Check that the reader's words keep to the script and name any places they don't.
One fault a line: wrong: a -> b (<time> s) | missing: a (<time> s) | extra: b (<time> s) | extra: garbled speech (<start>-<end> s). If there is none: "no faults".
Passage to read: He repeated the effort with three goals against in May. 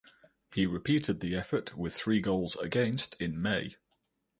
no faults